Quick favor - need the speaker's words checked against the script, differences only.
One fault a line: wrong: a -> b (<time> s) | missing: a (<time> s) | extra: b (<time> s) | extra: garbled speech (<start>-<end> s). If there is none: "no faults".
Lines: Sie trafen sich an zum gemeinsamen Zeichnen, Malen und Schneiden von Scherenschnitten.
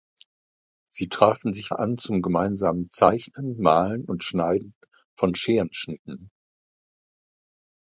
no faults